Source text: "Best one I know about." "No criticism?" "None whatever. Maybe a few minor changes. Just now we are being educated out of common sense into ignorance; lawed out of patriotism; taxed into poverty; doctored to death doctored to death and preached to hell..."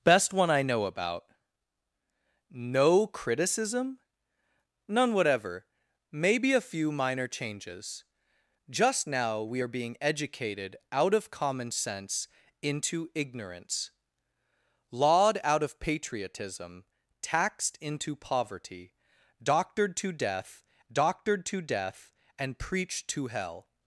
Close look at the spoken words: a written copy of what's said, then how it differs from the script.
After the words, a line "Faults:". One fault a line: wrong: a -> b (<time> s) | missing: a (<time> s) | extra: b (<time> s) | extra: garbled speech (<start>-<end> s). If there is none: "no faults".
"Best one I know about." "No criticism?" "None whatever. Maybe a few minor changes. Just now we are being educated out of common sense into ignorance; lawed out of patriotism; taxed into poverty; doctored to death doctored to death and preached to hell..."
Faults:
no faults